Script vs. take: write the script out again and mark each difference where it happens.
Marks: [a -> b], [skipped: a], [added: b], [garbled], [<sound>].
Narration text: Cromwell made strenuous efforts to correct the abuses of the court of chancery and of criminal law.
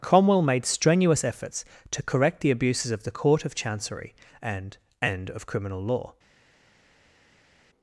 Cromwell made strenuous efforts to correct the abuses of the court of chancery and [added: and] of criminal law.